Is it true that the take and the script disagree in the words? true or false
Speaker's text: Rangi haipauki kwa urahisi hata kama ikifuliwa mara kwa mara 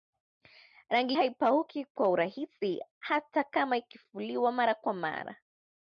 false